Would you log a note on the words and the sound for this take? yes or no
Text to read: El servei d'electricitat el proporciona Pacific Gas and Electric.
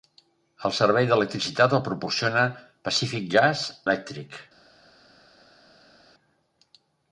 yes